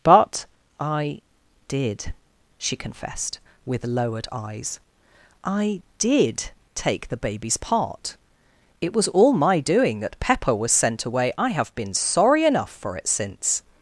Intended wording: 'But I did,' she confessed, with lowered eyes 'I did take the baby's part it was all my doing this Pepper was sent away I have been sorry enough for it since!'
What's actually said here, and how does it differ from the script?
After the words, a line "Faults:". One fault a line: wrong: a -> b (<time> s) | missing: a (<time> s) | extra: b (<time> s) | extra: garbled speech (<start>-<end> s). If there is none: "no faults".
'But I did,' she confessed, with lowered eyes 'I did take the baby's part it was all my doing that Pepper was sent away I have been sorry enough for it since!'
Faults:
wrong: this -> that (10.0 s)